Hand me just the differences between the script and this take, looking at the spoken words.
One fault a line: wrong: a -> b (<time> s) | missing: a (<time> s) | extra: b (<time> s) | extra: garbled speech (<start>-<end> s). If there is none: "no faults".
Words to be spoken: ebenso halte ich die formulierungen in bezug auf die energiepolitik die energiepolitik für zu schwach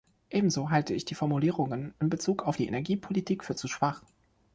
missing: die energiepolitik (3.4 s)